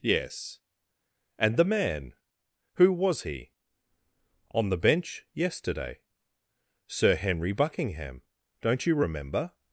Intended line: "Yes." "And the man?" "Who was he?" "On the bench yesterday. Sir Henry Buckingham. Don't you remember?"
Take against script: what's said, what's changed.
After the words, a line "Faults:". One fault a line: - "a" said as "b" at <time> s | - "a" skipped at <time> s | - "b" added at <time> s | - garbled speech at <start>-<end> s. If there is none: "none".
"Yes." "And the man?" "Who was he?" "On the bench yesterday. Sir Henry Buckingham. Don't you remember?"
Faults:
none